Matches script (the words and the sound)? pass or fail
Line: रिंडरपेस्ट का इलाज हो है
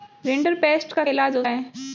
pass